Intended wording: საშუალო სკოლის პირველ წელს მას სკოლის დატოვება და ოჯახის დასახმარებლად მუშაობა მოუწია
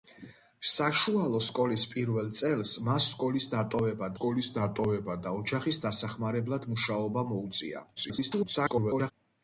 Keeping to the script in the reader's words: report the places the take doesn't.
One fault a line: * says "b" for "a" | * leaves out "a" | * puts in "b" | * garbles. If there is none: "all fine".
* puts in "სკოლის დატოვება"
* garbles